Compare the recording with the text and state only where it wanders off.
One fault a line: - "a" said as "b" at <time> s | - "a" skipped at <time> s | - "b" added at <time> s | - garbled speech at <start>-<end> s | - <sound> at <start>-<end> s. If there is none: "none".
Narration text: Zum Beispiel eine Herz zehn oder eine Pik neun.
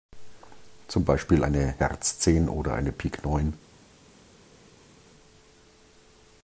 none